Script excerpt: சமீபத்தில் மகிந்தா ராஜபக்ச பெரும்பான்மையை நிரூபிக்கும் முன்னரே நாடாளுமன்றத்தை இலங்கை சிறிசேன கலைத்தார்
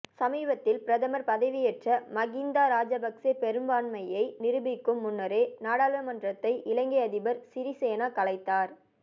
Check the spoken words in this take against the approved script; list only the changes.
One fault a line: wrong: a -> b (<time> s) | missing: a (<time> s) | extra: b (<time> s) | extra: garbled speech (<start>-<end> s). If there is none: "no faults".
extra: பிரதமர் பதவியேற்ற (0.8 s)
extra: அதிபர் (7.0 s)